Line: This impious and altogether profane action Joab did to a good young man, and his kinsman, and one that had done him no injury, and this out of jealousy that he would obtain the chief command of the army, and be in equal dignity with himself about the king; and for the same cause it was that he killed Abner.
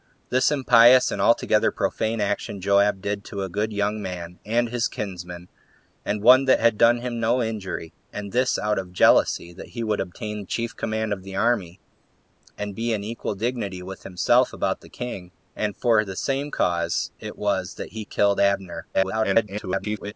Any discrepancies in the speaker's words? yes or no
yes